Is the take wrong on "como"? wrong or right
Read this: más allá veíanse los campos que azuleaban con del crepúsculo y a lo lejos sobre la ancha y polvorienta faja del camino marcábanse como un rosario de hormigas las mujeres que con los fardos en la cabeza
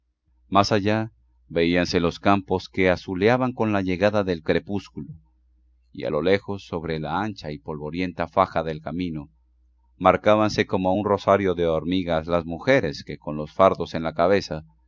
right